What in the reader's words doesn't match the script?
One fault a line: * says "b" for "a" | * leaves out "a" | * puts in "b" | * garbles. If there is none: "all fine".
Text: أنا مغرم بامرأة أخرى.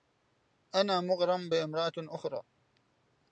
all fine